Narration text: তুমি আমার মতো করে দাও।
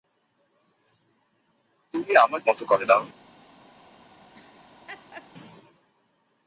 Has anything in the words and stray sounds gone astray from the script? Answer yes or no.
yes